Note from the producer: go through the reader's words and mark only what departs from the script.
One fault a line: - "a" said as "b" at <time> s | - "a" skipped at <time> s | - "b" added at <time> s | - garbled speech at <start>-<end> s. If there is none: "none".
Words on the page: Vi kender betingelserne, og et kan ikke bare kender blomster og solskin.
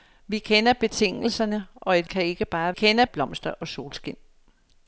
none